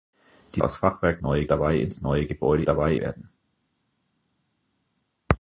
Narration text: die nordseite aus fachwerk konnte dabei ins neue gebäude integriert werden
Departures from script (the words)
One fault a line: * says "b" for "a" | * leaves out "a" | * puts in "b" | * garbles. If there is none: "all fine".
* leaves out "nordseite"
* says "neue" for "konnte"
* says "dabei" for "integriert"